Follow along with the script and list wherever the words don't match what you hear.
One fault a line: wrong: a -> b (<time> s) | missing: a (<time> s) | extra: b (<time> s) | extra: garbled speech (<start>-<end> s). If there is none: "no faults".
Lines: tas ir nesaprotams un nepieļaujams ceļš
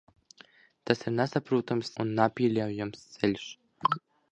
no faults